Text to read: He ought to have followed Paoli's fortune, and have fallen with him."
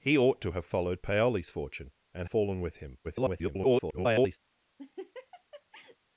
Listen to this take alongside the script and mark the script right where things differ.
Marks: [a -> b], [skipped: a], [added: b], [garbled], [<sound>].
He ought to have followed Paoli's fortune, and [skipped: have] fallen with him." [garbled] [laugh]